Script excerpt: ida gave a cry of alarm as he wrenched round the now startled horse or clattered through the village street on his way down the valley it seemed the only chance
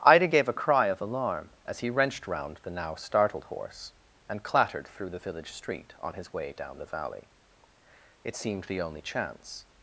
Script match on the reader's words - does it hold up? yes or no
no